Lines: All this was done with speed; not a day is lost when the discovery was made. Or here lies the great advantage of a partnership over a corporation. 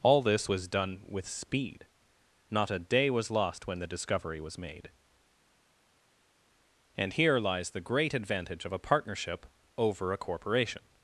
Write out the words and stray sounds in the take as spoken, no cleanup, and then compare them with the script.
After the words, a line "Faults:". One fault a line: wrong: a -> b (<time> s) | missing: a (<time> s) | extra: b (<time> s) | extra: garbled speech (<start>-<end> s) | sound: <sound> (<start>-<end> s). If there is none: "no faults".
All this was done with speed; not a day was lost when the discovery was made. And here lies the great advantage of a partnership over a corporation.
Faults:
wrong: is -> was (3.1 s)
wrong: Or -> And (7.0 s)